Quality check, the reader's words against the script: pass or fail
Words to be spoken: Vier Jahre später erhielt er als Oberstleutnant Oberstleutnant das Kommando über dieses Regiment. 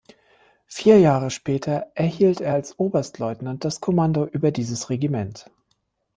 fail